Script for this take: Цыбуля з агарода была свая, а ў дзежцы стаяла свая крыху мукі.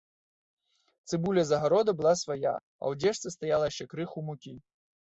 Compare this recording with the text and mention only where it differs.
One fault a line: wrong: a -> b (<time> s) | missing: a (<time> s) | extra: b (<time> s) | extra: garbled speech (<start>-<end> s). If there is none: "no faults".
wrong: свая -> яшчэ (3.7 s)